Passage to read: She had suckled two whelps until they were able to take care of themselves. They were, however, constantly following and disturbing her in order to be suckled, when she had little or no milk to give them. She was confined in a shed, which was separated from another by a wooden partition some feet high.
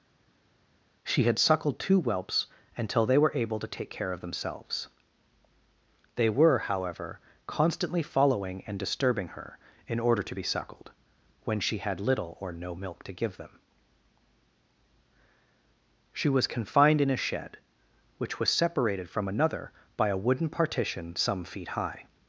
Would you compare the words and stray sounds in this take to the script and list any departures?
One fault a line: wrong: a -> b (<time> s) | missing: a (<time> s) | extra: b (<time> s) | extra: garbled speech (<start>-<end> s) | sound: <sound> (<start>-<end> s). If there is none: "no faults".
no faults